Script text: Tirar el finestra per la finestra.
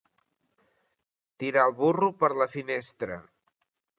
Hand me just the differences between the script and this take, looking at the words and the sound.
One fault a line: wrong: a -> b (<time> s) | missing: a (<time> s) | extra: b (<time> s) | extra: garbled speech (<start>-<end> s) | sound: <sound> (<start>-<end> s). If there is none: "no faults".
wrong: finestra -> burro (1.8 s)